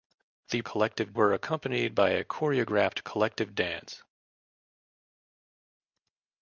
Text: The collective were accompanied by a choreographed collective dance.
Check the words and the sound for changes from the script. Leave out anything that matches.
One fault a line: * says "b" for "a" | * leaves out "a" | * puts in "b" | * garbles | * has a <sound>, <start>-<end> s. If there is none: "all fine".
all fine